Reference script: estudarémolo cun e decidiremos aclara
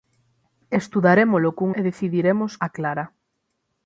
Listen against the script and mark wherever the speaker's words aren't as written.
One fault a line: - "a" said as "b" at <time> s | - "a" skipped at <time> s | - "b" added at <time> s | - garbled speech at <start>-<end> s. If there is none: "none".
none